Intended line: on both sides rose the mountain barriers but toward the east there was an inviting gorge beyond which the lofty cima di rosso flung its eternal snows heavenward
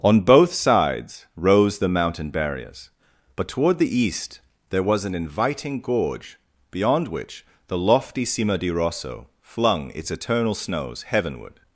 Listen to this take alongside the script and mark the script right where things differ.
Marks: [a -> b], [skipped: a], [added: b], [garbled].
on both sides rose the mountain barriers but toward the east there was an inviting gorge beyond which the lofty cima di rosso flung its eternal snows heavenward